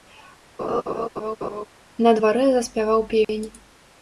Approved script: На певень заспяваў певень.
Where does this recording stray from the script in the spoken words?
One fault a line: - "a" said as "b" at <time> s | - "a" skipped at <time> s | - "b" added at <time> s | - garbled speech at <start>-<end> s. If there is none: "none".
- "певень" said as "дварэ" at 2.2 s